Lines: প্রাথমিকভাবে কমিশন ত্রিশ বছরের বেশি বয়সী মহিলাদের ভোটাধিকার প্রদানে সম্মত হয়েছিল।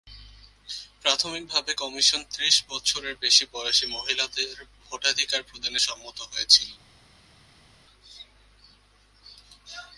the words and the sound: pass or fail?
pass